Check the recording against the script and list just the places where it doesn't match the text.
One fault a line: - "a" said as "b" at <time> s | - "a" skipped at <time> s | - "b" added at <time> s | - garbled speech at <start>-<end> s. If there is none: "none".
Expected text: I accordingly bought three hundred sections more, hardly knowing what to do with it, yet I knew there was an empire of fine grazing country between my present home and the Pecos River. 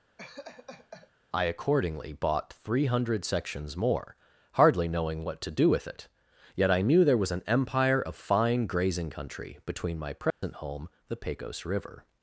- "and" skipped at 10.9 s